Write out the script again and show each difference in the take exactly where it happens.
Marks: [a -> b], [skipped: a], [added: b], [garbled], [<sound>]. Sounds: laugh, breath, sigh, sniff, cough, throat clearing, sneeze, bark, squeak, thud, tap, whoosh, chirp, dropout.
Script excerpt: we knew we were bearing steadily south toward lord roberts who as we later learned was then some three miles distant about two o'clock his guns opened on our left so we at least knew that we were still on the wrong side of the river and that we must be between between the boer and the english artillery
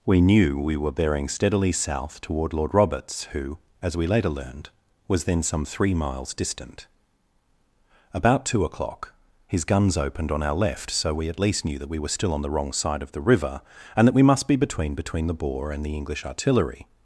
we knew we were bearing steadily south toward lord roberts who as we later learned was then some three miles distant about two o'clock his guns opened on our left so we at least knew that we were still on the wrong side of the river and that we must be between between the boer and the english artillery